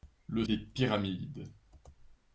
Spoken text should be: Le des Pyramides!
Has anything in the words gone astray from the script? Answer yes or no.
no